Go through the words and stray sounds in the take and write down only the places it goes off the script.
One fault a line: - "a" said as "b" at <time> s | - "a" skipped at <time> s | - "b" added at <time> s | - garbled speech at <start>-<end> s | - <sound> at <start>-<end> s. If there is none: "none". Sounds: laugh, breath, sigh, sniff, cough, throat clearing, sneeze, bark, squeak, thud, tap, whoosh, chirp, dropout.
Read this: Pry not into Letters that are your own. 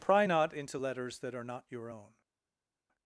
- "not" added at 1.4 s